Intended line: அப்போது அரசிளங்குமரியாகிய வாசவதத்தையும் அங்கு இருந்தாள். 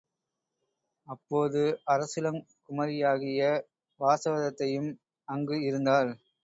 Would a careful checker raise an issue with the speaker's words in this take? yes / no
no